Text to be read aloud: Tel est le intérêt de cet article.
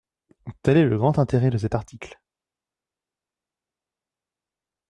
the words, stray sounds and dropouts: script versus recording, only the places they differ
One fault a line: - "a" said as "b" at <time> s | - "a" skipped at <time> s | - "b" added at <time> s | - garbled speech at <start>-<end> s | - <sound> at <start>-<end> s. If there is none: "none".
- "grand" added at 1.0 s